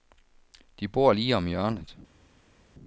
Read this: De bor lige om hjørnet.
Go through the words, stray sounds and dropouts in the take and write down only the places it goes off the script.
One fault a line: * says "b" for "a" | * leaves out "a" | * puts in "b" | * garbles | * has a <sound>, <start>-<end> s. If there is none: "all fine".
all fine